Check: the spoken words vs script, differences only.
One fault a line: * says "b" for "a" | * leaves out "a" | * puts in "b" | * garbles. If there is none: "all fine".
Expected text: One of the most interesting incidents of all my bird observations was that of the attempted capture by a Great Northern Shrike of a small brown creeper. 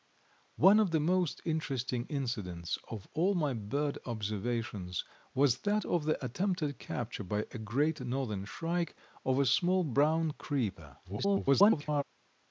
* garbles